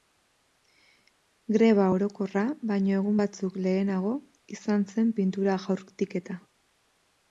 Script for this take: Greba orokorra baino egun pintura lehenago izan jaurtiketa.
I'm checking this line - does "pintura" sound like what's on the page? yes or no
no